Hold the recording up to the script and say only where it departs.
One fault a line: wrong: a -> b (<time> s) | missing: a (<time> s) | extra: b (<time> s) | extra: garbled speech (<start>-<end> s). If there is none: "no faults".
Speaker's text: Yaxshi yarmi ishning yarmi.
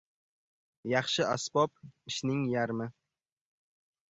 wrong: yarmi -> asbob (1.3 s)